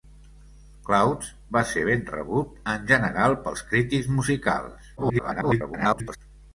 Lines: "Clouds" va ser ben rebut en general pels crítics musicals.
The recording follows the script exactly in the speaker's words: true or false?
false